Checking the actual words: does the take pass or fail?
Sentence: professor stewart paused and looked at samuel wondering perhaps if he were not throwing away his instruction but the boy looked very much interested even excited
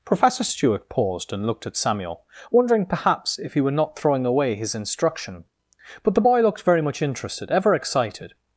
fail